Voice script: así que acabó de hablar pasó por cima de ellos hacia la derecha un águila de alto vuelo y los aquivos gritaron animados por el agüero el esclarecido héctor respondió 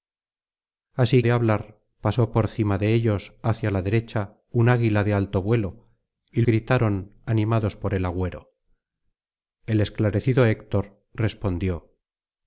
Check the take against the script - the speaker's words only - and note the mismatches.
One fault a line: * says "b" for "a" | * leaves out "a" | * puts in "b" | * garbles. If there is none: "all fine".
* leaves out "que acabó"
* leaves out "los aquivos"